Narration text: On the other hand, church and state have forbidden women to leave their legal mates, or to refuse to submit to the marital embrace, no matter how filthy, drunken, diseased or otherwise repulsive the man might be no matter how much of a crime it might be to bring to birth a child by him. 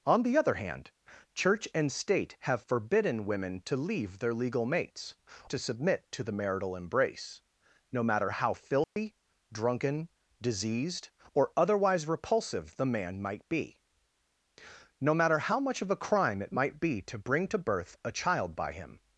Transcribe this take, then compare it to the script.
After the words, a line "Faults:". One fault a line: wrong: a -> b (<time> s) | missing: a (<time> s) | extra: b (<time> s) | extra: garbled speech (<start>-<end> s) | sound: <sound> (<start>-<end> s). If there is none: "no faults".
On the other hand, church and state have forbidden women to leave their legal mates, to submit to the marital embrace, no matter how filthy, drunken, diseased or otherwise repulsive the man might be no matter how much of a crime it might be to bring to birth a child by him.
Faults:
missing: or to refuse (5.1 s)
sound: dropout (8.8-9.0 s)